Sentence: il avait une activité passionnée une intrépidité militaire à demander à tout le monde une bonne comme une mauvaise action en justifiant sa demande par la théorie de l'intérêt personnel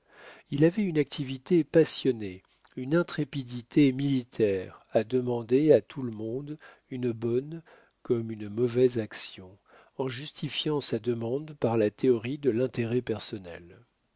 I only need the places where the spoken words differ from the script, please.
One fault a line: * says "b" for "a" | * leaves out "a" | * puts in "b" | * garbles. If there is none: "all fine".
all fine